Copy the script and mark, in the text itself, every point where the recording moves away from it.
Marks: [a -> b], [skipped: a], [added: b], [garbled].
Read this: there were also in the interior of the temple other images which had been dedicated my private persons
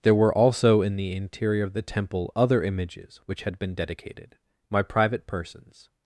there were also in the interior of the temple other images which had been dedicated my private persons